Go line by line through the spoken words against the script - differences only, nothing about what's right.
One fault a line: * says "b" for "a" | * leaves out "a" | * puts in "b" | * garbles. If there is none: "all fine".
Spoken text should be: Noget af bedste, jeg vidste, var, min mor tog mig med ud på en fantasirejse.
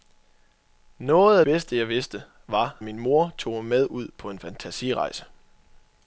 all fine